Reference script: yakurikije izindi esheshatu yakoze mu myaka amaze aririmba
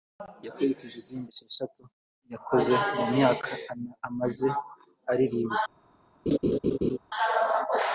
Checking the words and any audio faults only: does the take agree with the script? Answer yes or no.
no